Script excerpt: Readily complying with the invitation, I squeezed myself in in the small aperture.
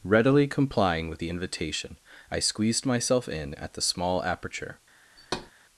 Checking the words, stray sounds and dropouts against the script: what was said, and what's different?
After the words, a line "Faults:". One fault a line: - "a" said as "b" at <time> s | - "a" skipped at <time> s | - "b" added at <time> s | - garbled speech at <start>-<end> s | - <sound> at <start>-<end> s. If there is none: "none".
Readily complying with the invitation, I squeezed myself in at the small aperture.
Faults:
- "in" said as "at" at 3.5 s
- thud at 5.2-5.5 s